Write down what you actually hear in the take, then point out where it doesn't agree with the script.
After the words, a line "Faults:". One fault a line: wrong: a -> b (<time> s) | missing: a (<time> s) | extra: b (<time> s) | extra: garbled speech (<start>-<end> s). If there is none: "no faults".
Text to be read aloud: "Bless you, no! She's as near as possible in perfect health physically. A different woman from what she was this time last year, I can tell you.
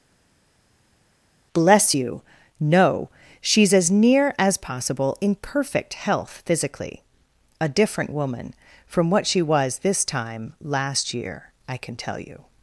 "Bless you, no! She's as near as possible in perfect health physically. A different woman from what she was this time last year, I can tell you.
Faults:
no faults